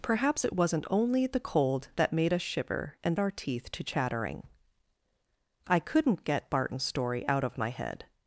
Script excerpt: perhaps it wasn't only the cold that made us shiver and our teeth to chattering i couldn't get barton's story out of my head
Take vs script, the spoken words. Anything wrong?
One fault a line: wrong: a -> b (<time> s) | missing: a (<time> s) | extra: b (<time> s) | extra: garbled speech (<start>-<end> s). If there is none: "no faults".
no faults